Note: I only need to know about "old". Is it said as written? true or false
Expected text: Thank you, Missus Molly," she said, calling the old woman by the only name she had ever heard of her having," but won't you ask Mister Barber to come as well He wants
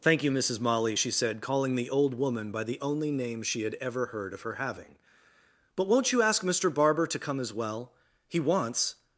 true